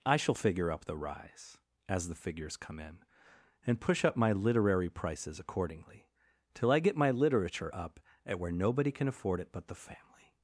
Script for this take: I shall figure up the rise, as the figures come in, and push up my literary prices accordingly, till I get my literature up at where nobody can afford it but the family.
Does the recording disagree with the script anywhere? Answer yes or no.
no